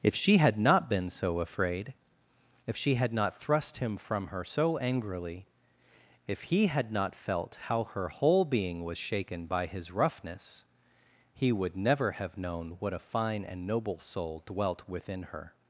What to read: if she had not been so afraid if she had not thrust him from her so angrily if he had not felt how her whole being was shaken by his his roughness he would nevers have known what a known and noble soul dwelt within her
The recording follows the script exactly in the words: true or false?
false